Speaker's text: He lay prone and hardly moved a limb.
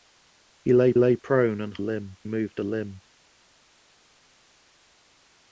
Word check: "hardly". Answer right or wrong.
wrong